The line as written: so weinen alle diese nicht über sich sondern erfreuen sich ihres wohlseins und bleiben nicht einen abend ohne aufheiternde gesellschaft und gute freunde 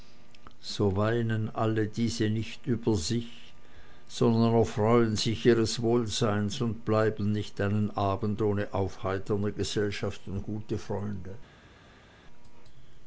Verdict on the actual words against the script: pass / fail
pass